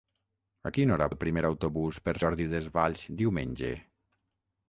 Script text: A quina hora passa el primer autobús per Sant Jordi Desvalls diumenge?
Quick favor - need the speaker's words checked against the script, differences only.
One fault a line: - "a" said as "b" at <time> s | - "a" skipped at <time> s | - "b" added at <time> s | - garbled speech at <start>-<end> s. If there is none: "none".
- "passa" skipped at 1.1 s
- "Sant" skipped at 2.2 s